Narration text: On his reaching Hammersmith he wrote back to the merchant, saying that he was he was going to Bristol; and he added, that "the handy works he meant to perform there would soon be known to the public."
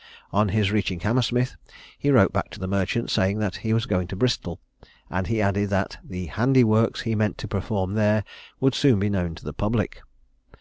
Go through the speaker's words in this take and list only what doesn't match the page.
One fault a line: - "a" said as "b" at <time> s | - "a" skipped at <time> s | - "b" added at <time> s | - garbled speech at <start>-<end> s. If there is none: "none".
- "he was" skipped at 3.9 s